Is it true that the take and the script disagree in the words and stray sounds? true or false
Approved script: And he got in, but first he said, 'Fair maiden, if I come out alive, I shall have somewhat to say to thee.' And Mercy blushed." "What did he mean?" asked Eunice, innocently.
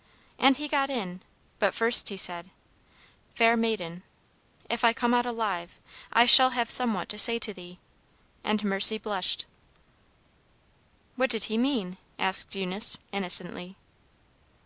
false